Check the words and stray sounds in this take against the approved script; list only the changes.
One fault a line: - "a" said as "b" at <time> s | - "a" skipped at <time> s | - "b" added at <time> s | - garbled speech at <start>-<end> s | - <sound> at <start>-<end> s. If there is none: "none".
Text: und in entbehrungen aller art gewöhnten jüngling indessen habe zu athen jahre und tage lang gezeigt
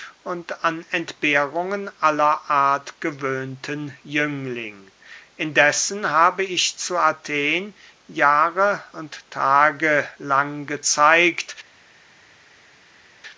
- "in" said as "an" at 0.7 s
- "ich" added at 6.4 s